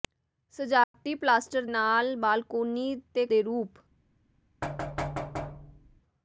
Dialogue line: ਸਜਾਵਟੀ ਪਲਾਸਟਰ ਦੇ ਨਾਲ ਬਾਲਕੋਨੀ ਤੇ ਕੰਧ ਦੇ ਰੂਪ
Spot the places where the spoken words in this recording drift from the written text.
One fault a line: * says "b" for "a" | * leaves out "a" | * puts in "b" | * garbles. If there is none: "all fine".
* leaves out "ਦੇ"
* leaves out "ਕੰਧ"